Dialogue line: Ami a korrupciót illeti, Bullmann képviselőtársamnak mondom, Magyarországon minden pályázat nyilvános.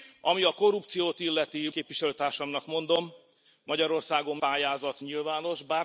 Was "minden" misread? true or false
true